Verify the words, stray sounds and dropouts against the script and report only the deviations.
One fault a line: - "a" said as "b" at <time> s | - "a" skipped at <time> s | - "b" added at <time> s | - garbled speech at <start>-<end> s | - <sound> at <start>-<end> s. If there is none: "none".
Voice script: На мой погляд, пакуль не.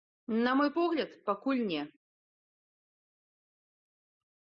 none